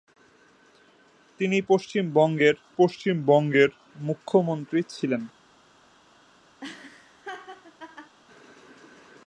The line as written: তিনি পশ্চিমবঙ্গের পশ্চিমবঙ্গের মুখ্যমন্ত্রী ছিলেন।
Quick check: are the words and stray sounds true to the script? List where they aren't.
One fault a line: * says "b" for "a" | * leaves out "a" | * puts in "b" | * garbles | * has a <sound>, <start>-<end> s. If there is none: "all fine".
* has a laugh, 6.6-8.2 s